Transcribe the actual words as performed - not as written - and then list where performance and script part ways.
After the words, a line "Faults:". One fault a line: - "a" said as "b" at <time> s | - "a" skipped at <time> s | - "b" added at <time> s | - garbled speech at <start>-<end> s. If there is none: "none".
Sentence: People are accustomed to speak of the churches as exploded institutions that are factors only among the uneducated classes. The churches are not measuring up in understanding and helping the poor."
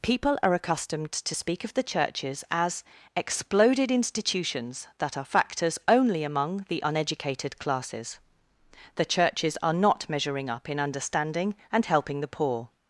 People are accustomed to speak of the churches as exploded institutions that are factors only among the uneducated classes. The churches are not measuring up in understanding and helping the poor."
Faults:
none